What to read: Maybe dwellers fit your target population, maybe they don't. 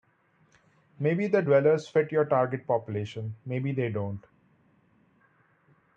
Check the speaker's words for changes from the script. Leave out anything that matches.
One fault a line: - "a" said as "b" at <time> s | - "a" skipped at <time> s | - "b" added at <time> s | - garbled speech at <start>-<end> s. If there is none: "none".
- "the" added at 1.3 s